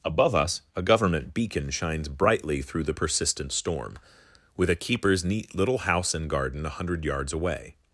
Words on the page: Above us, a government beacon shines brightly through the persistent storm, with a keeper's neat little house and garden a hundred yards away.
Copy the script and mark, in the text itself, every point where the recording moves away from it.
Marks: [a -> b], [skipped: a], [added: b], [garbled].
Above us, a government beacon shines brightly through the persistent storm, with a keeper's neat little house and garden a hundred yards away.